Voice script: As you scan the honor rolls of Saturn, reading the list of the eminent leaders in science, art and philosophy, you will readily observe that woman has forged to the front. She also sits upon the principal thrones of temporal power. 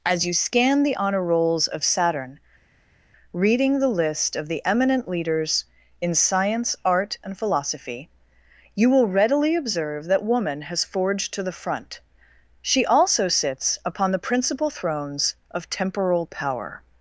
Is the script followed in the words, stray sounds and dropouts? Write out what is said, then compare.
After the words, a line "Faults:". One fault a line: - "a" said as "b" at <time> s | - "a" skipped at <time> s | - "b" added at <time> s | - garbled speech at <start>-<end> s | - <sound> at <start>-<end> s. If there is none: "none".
As you scan the honor rolls of Saturn, reading the list of the eminent leaders in science, art and philosophy, you will readily observe that woman has forged to the front. She also sits upon the principal thrones of temporal power.
Faults:
none